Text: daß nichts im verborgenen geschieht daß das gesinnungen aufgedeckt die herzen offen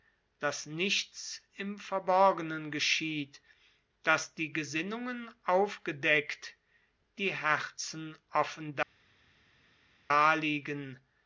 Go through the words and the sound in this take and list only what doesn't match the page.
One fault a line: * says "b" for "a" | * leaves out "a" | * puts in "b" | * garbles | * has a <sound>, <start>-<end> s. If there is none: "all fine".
* says "die" for "das"